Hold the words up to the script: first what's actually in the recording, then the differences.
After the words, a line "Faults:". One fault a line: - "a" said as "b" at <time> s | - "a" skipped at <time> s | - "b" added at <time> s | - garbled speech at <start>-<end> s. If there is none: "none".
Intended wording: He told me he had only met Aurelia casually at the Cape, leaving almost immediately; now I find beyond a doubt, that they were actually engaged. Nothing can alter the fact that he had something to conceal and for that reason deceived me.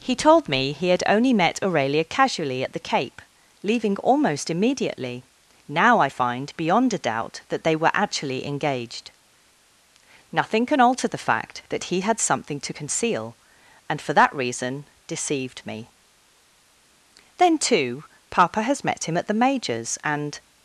He told me he had only met Aurelia casually at the Cape, leaving almost immediately; now I find beyond a doubt, that they were actually engaged. Nothing can alter the fact that he had something to conceal and for that reason deceived me. Then, too, papa has met him at the Major's, and
Faults:
- "Then too papa has met him at the Major's and" added at 17.4 s